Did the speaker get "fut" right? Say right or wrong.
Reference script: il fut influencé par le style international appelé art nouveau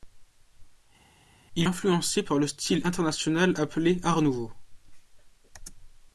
wrong